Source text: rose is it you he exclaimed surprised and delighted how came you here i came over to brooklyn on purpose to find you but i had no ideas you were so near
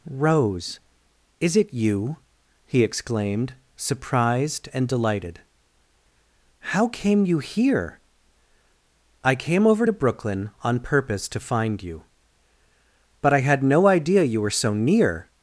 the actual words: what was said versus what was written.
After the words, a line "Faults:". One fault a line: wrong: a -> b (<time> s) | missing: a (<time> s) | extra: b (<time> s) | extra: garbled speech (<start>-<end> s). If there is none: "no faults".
rose is it you he exclaimed surprised and delighted how came you here i came over to brooklyn on purpose to find you but i had no idea you were so near
Faults:
wrong: ideas -> idea (13.9 s)